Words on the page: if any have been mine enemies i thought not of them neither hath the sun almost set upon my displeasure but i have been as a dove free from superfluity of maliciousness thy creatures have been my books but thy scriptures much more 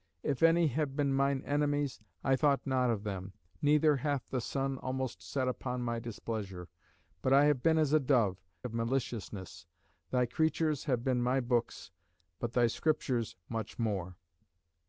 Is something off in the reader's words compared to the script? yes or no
yes